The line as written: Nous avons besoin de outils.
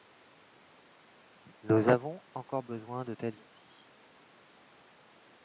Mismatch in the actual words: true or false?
true